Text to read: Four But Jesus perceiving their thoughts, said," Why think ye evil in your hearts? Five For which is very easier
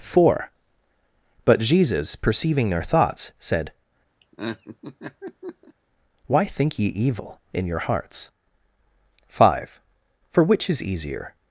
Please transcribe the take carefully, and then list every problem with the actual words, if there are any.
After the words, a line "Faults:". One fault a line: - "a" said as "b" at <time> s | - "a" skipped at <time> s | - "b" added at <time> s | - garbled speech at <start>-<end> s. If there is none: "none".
Four But Jesus perceiving their thoughts, said," Why think ye evil in your hearts? Five For which is easier
Faults:
- "very" skipped at 10.8 s